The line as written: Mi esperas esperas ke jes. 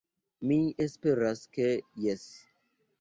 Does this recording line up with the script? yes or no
no